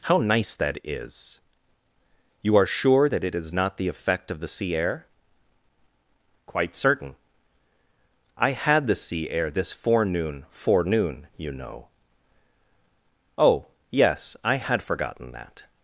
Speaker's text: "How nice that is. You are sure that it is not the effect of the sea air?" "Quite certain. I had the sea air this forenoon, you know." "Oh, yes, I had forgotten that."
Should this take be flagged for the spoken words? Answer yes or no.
yes